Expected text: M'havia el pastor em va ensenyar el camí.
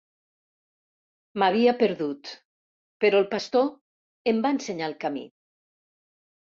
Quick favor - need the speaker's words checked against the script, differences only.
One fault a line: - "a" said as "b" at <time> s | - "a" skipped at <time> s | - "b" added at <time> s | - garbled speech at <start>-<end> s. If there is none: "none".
- "perdut però" added at 1.8 s